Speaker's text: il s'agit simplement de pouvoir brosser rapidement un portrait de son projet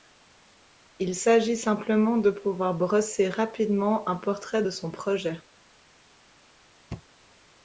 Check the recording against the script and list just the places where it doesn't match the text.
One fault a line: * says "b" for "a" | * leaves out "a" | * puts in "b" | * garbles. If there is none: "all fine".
all fine